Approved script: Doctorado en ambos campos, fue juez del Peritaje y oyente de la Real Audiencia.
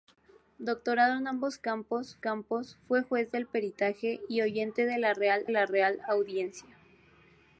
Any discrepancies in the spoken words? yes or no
yes